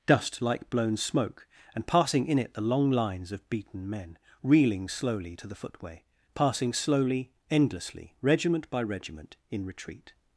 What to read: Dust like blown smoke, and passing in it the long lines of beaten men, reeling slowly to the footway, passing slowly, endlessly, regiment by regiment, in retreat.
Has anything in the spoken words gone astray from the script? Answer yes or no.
no